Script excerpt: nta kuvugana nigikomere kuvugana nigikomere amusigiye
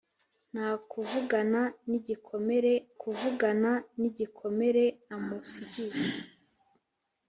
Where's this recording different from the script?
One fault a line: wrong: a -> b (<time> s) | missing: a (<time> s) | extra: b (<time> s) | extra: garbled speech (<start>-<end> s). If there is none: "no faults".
no faults